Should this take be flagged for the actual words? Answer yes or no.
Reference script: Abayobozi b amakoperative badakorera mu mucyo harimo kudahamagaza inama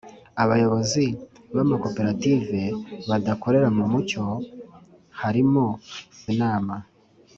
yes